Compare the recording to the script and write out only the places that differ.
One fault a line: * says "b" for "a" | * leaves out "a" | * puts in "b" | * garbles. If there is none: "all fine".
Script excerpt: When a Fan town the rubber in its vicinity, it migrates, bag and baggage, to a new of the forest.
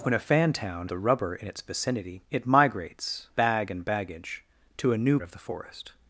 all fine